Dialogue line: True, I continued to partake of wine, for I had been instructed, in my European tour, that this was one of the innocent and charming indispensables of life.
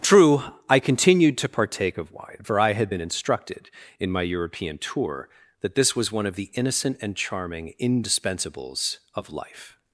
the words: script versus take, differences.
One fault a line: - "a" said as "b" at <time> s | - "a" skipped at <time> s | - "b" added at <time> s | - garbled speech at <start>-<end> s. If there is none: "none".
none